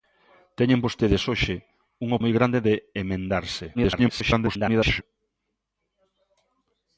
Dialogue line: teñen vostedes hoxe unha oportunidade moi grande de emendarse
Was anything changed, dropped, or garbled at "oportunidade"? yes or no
yes